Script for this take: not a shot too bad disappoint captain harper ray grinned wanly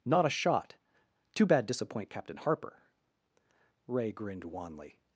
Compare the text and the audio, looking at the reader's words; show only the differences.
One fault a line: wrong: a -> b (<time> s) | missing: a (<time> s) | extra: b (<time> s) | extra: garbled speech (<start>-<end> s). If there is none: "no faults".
no faults